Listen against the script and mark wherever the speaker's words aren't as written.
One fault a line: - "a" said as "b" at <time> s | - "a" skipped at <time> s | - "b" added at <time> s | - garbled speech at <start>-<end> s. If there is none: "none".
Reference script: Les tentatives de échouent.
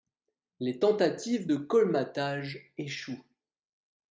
- "colmatage" added at 1.6 s